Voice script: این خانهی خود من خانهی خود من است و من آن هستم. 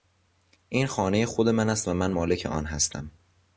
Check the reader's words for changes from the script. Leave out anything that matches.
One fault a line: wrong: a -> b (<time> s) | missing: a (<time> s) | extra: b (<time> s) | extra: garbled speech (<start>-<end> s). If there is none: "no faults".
missing: خانهی خود من (1.7 s)
extra: مالک (2.1 s)